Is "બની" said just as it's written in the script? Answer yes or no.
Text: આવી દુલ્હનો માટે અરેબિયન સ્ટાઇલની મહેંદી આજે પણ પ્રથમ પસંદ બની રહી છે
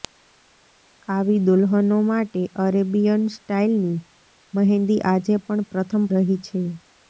no